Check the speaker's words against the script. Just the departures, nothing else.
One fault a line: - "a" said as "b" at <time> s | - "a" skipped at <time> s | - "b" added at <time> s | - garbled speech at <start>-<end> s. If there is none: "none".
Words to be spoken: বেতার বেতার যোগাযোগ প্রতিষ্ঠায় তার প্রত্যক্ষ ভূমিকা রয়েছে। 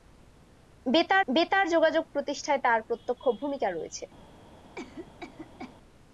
none